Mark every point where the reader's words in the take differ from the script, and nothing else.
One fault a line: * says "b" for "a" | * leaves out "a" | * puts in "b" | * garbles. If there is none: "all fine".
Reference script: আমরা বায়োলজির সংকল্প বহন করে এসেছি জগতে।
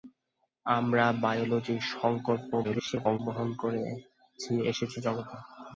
* garbles